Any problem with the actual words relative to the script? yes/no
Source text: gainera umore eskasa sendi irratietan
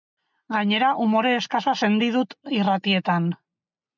yes